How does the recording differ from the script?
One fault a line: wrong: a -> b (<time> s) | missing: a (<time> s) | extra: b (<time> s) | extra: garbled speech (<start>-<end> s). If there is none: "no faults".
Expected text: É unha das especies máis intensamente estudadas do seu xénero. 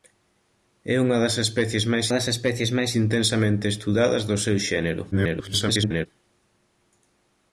extra: das especies máis (2.1 s)
extra: garbled speech (5.1-6.1 s)